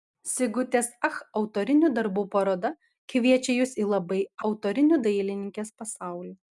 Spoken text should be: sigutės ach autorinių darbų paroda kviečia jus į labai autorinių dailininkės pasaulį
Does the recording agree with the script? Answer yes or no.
yes